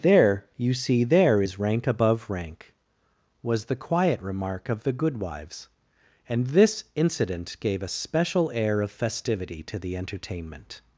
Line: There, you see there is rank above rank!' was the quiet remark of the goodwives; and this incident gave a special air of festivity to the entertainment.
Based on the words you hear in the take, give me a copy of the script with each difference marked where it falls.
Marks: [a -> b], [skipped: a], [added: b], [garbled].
There, you see there is rank above rank!' was the quiet remark of the goodwives; and this incident gave a special air of festivity to the entertainment.